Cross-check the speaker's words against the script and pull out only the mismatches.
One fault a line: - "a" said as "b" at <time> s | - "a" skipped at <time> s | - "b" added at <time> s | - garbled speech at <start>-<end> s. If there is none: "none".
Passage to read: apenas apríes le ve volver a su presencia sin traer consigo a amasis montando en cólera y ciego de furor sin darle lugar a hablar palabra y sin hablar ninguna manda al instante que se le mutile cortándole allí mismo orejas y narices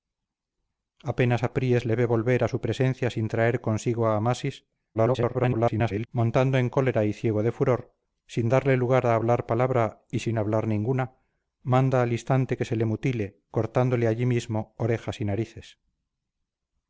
- garbled speech at 4.9-6.1 s